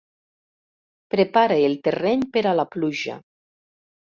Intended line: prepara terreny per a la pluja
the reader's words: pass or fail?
fail